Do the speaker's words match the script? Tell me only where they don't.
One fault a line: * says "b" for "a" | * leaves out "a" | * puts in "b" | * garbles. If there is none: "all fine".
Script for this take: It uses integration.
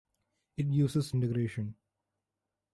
all fine